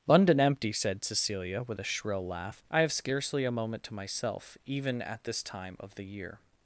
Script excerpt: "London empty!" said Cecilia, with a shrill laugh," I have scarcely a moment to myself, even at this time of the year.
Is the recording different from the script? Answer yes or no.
no